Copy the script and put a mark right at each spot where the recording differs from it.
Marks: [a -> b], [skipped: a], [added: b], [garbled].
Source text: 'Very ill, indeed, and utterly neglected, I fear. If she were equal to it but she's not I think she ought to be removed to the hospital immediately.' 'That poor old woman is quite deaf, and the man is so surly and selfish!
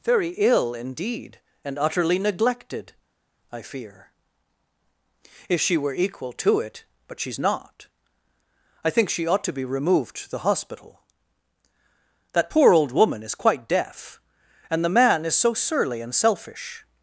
'Very ill, indeed, and utterly neglected, I fear. If she were equal to it but she's not I think she ought to be removed to the hospital [skipped: immediately.'] 'That poor old woman is quite deaf, and the man is so surly and selfish!